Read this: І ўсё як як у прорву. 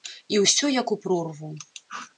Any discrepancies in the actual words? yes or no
yes